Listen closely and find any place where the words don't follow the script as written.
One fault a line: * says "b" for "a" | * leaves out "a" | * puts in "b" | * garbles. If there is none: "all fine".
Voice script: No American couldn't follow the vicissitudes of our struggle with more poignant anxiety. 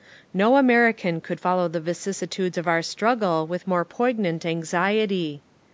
* says "could" for "couldn't"